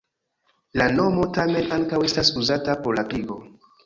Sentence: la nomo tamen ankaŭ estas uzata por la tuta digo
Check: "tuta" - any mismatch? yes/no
yes